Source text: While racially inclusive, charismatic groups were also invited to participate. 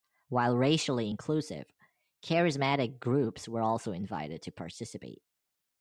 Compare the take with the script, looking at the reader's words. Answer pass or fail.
pass